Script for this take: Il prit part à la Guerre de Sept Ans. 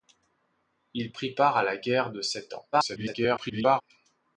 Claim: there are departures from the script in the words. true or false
true